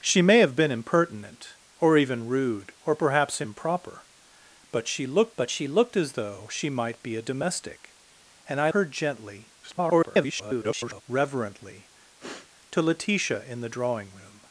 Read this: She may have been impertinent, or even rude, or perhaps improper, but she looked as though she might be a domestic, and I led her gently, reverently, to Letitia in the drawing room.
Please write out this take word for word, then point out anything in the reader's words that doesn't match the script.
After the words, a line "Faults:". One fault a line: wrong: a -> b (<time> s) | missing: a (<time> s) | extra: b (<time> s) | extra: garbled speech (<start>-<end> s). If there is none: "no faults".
She may have been impertinent, or even rude, or perhaps improper, but she looked but she looked as though she might be a domestic, and I her gently, [garbled] reverently, to Letitia in the drawing room.
Faults:
extra: but she looked (5.4 s)
missing: led (8.7 s)
extra: garbled speech (9.6-11.0 s)